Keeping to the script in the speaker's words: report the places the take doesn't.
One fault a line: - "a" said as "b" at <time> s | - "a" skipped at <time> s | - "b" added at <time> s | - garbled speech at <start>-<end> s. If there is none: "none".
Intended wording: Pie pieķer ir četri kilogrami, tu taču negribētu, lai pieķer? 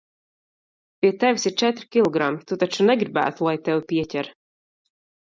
- "pieķer" said as "tevis" at 1.2 s
- "tevi" added at 3.7 s